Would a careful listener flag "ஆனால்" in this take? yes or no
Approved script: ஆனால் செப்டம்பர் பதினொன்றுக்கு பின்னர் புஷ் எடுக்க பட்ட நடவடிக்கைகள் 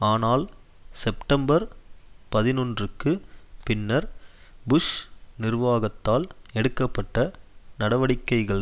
no